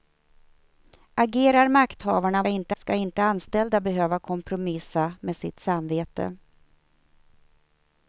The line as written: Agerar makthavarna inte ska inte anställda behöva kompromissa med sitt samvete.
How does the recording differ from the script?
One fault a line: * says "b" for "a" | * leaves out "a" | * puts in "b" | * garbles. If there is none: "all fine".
all fine